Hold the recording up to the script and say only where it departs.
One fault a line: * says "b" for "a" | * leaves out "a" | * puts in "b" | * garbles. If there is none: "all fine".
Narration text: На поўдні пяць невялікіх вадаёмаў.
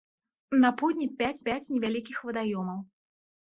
* puts in "пяць"